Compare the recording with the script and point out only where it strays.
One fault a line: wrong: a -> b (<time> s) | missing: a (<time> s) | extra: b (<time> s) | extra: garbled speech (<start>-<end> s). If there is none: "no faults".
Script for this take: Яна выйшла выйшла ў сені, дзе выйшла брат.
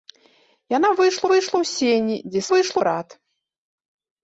no faults